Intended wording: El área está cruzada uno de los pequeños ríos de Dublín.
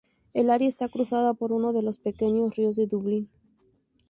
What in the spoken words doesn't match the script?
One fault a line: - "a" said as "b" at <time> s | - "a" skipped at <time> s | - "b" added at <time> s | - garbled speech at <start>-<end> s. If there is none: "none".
- "por" added at 1.4 s